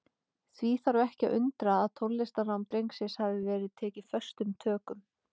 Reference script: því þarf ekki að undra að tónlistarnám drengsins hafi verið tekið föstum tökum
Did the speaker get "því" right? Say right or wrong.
right